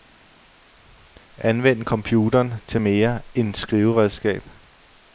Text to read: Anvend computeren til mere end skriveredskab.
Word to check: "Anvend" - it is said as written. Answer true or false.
true